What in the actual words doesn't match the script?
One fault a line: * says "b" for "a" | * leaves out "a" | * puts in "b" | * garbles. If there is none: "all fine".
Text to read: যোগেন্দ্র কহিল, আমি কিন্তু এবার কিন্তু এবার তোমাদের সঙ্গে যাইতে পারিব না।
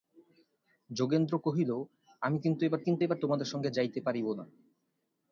all fine